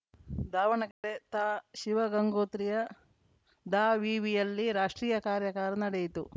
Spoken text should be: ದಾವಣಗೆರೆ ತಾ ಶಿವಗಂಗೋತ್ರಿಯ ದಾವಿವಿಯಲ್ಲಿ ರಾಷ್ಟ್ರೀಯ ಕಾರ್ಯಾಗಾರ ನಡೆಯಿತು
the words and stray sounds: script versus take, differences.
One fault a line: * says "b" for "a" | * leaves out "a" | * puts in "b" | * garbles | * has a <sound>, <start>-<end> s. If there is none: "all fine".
* has a dropout, 0.9-1.0 s